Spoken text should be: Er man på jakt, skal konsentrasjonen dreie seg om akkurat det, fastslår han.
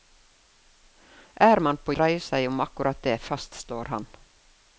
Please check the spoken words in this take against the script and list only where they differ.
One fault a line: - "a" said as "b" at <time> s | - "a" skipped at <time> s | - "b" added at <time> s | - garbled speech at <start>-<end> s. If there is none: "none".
- "jakt skal konsentrasjonen" skipped at 1.9 s